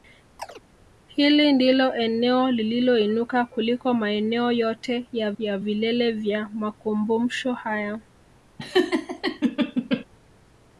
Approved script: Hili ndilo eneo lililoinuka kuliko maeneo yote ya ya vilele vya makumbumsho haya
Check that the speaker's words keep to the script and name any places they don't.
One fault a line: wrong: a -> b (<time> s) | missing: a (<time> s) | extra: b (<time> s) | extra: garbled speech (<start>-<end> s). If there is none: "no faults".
no faults